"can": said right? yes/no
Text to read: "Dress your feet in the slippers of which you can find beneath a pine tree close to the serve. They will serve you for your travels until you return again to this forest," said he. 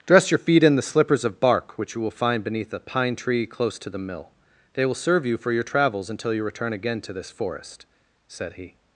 no